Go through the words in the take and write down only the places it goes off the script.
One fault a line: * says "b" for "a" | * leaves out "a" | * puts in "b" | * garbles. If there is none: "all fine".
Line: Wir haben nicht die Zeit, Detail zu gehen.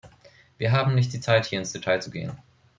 * puts in "hier ins"